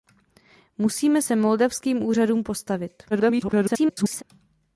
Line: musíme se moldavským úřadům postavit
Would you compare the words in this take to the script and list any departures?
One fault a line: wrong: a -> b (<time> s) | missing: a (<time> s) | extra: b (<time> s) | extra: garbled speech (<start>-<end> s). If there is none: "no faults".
extra: garbled speech (3.1-4.2 s)